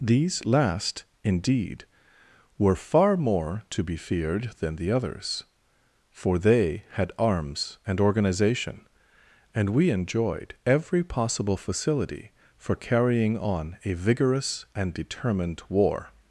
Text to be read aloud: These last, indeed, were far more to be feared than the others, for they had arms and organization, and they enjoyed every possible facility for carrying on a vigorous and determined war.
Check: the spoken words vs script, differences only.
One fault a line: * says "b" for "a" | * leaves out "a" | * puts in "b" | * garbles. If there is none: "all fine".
* says "we" for "they"